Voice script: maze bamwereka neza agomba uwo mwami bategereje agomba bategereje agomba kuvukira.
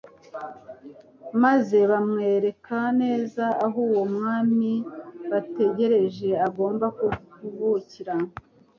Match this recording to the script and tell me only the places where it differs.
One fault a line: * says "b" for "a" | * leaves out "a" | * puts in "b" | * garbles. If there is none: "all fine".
* says "aho" for "agomba"
* leaves out "bategereje agomba"